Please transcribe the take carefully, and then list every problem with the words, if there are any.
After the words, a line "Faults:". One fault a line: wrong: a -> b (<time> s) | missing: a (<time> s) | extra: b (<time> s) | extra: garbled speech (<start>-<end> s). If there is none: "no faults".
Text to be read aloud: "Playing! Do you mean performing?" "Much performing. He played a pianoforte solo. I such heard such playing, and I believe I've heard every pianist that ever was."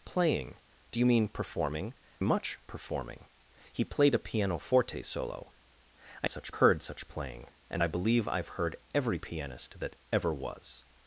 "Playing! Do you mean performing?" "Much performing. He played a pianoforte solo. I such heard such playing, and I believe I've heard every pianist that ever was."
Faults:
no faults